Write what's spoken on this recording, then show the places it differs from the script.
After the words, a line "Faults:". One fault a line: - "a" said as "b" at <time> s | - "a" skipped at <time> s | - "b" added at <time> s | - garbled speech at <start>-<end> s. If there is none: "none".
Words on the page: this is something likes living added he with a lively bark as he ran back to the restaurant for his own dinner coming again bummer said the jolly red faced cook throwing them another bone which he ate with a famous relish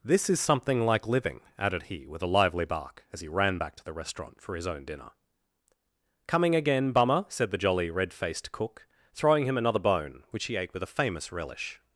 this is something like living added he with a lively bark as he ran back to the restaurant for his own dinner coming again bummer said the jolly red faced cook throwing him another bone which he ate with a famous relish
Faults:
- "likes" said as "like" at 0.8 s
- "them" said as "him" at 9.4 s